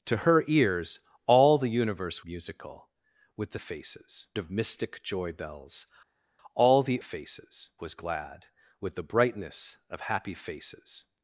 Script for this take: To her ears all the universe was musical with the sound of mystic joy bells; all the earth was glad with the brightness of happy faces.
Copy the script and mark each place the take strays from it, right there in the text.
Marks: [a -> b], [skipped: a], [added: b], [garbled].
To her ears all the universe [skipped: was] musical with the [sound -> faces] of mystic joy bells; all the [earth -> faces] was glad with the brightness of happy faces.